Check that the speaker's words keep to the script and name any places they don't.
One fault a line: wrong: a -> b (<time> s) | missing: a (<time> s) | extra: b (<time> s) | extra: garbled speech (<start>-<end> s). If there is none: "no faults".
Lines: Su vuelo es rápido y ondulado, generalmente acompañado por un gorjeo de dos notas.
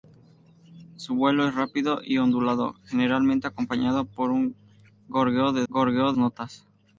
wrong: dos -> gorjeo (5.7 s)